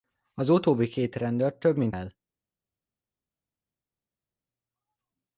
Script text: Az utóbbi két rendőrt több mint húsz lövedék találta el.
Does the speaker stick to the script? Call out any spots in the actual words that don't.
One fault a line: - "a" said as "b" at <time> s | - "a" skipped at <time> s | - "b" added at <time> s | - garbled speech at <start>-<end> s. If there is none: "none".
- "húsz lövedék találta" skipped at 1.9 s